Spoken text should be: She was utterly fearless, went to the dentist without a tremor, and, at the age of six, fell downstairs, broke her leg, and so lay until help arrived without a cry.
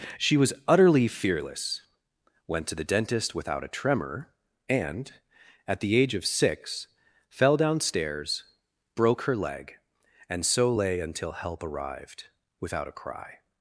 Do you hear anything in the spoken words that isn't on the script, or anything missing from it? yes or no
no